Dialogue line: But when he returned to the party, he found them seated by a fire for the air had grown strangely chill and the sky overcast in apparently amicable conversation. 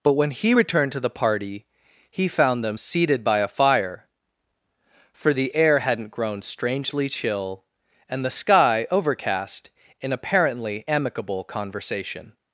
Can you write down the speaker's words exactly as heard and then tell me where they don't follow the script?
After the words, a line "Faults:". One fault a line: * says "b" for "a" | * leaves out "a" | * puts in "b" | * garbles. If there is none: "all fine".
But when he returned to the party, he found them seated by a fire for the air hadn't grown strangely chill and the sky overcast in apparently amicable conversation.
Faults:
* says "hadn't" for "had"